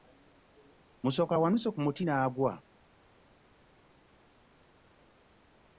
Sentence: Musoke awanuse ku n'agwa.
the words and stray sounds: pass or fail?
fail